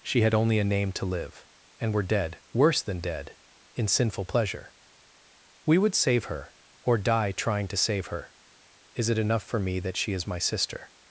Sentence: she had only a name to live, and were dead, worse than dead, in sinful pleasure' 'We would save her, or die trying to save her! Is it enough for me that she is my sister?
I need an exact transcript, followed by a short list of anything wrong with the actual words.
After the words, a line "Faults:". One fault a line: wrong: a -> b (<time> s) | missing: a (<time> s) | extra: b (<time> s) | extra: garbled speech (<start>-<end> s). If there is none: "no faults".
she had only a name to live, and were dead, worse than dead, in sinful pleasure' 'We would save her, or die trying to save her! Is it enough for me that she is my sister?
Faults:
no faults